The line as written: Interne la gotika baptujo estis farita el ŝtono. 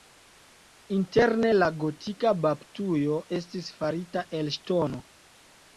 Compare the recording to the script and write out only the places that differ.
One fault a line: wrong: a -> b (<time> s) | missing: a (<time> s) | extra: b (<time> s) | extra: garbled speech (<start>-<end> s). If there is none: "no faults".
no faults